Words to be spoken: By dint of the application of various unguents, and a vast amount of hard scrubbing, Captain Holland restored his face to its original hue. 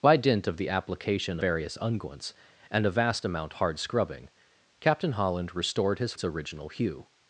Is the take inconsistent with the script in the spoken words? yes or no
yes